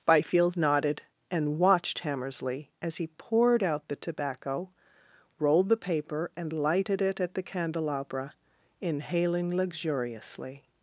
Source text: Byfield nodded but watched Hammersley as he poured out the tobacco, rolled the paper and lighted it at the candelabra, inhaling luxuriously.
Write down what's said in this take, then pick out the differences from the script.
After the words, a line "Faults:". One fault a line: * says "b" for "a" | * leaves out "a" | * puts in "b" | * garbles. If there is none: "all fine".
Byfield nodded and watched Hammersley as he poured out the tobacco, rolled the paper and lighted it at the candelabra, inhaling luxuriously.
Faults:
* says "and" for "but"